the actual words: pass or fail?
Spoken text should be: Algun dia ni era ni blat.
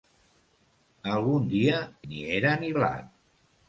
pass